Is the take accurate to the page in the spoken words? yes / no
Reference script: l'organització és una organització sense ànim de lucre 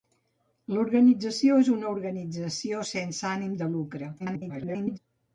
no